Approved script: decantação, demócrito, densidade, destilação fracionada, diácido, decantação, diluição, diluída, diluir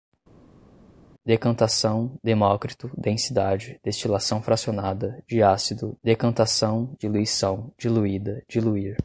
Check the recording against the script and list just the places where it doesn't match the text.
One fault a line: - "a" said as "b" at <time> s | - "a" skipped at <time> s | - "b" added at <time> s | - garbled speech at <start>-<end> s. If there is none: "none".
none